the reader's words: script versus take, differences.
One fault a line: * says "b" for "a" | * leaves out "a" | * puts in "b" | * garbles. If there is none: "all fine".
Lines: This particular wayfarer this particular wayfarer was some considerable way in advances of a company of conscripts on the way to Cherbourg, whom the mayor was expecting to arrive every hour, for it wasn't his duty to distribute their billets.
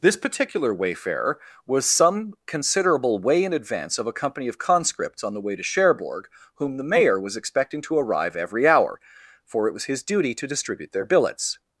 * leaves out "this particular wayfarer"
* says "advance" for "advances"
* says "was" for "wasn't"